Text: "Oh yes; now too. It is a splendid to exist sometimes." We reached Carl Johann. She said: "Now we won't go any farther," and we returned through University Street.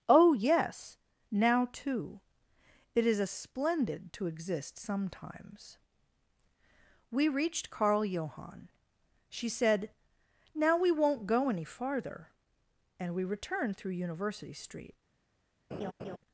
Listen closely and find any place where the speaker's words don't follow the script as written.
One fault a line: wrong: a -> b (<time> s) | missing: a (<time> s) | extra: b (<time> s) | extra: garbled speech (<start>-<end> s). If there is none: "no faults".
no faults